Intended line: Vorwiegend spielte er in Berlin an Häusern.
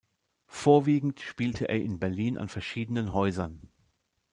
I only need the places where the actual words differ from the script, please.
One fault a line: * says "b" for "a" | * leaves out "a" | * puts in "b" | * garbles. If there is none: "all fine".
* puts in "verschiedenen"